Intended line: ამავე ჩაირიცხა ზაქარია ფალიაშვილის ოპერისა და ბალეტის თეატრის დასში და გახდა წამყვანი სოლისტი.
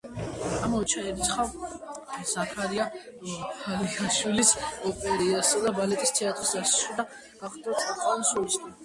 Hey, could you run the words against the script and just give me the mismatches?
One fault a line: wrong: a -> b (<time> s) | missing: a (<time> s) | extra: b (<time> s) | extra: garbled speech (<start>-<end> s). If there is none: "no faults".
no faults